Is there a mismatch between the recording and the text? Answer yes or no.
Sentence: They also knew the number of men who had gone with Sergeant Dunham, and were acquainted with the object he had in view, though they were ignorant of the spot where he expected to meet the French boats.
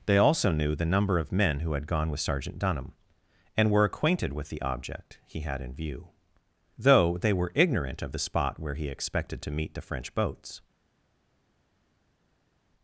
no